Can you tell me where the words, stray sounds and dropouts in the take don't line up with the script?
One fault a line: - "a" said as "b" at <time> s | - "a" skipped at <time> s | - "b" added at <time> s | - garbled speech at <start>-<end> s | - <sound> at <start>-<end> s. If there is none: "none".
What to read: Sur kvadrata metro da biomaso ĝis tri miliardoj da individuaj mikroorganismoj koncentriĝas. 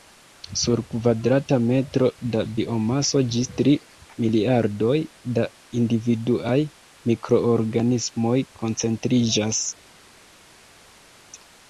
none